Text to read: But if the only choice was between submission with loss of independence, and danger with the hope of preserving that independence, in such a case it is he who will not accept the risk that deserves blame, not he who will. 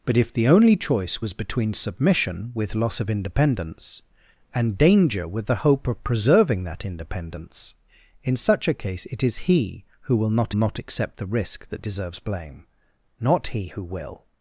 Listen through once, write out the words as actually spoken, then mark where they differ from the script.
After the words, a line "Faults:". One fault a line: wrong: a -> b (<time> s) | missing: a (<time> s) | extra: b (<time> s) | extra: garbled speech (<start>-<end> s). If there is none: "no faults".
But if the only choice was between submission with loss of independence, and danger with the hope of preserving that independence, in such a case it is he who will not not accept the risk that deserves blame, not he who will.
Faults:
extra: not (10.5 s)